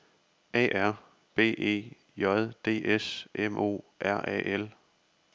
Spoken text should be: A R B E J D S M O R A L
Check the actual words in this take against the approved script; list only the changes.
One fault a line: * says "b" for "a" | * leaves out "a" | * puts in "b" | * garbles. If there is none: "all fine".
all fine